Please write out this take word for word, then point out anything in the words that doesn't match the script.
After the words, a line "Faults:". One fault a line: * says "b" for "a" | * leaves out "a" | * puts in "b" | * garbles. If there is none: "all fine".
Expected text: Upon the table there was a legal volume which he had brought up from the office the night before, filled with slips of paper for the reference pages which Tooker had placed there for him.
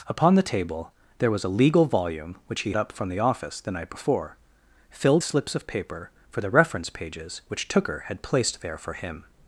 Upon the table there was a legal volume which he up from the office the night before, filled slips of paper for the reference pages which Tooker had placed there for him.
Faults:
* leaves out "had brought"
* leaves out "with"